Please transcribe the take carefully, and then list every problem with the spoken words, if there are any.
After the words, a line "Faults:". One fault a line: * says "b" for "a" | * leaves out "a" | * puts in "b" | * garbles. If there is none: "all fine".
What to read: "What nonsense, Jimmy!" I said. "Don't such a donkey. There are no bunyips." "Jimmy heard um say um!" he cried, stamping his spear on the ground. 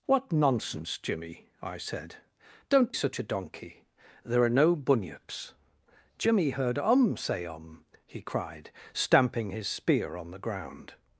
"What nonsense, Jimmy!" I said. "Don't such a donkey. There are no bunyips." "Jimmy heard um say um!" he cried, stamping his spear on the ground.
Faults:
all fine